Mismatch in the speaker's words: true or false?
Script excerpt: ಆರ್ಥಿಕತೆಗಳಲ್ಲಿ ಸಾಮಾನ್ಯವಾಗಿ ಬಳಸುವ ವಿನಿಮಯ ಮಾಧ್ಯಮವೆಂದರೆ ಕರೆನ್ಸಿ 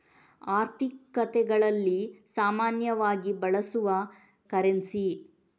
true